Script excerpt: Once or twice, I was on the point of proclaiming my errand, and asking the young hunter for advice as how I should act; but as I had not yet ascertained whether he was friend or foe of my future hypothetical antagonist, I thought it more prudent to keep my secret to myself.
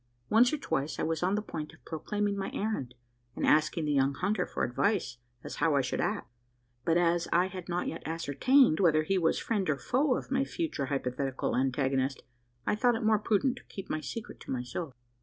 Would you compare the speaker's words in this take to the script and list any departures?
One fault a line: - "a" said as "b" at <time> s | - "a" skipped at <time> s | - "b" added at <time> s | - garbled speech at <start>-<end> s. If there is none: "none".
none